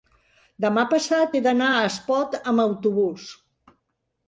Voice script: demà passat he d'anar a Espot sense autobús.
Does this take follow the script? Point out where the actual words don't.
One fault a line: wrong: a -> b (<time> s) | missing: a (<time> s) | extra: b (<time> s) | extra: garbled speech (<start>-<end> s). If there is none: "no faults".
wrong: sense -> amb (2.5 s)